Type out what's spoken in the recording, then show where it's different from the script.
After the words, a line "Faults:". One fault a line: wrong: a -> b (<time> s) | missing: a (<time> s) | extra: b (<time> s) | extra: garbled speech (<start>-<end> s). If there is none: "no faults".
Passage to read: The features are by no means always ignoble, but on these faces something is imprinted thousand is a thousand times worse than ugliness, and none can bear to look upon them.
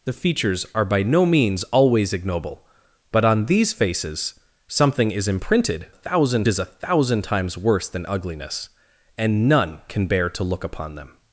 The features are by no means always ignoble, but on these faces something is imprinted thousand is a thousand times worse than ugliness, and none can bear to look upon them.
Faults:
no faults